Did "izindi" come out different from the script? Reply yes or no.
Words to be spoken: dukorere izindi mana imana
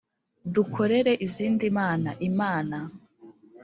no